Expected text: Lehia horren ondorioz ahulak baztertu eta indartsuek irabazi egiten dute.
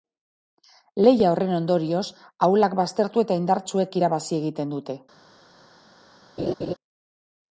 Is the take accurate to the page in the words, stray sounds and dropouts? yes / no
no